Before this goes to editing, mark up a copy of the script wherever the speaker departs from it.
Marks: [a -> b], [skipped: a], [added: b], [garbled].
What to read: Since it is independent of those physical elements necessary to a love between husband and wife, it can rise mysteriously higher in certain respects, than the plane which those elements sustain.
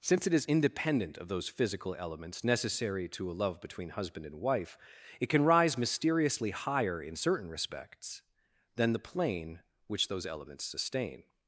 Since it is independent of those physical elements necessary to a love between husband and wife, it can rise mysteriously higher in certain respects, than the plane which those elements sustain.